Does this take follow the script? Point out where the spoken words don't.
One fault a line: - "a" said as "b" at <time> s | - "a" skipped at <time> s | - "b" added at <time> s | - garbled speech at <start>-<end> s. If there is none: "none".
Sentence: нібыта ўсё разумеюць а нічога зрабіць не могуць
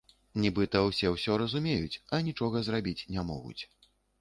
- "ўсе" added at 0.8 s